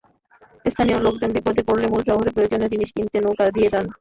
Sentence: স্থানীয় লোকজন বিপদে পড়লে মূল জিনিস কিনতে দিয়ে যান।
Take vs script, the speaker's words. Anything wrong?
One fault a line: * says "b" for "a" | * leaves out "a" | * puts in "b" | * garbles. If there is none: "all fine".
* puts in "শহরে প্রয়োজনীয়"
* puts in "নৌকা"